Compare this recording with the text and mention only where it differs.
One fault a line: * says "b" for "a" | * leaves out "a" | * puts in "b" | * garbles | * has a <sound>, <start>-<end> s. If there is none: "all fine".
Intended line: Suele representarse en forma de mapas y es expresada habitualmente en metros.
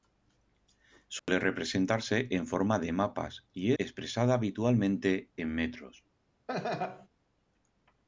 * has a dropout, 1.2-1.3 s
* leaves out "es"
* has a laugh, 6.5-7.1 s